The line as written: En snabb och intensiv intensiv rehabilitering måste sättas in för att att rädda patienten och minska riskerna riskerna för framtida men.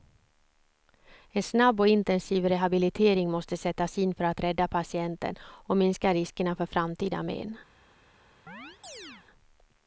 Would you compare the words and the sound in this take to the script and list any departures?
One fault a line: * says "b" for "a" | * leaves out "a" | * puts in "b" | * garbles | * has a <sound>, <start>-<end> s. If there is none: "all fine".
* leaves out "intensiv"
* leaves out "att"
* leaves out "riskerna"
* has a chirp, 8.5-9.3 s